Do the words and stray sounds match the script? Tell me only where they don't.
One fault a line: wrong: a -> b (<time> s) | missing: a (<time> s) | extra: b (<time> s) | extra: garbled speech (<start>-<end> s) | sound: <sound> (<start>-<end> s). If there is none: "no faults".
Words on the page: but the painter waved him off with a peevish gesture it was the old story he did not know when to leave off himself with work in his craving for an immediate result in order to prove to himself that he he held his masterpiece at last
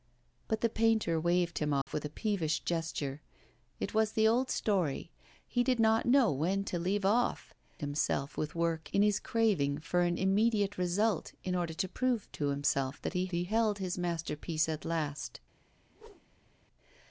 sound: dropout (1.8-1.9 s)
sound: whoosh (15.9-16.6 s)